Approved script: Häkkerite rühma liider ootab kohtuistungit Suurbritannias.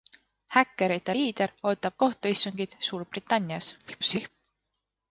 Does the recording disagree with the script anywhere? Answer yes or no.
yes